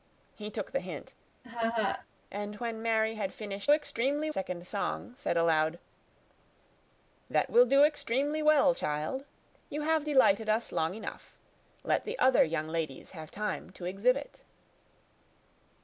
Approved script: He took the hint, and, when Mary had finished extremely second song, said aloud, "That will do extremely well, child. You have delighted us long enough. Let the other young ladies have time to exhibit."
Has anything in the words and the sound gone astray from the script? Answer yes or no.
yes